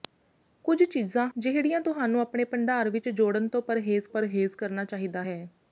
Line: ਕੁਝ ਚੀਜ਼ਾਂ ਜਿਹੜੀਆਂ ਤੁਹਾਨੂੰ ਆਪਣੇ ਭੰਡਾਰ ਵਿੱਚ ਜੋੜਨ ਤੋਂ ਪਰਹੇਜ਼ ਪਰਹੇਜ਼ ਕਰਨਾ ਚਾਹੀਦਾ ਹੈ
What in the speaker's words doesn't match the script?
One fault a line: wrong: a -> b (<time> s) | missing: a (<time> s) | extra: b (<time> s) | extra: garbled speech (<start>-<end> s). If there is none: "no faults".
no faults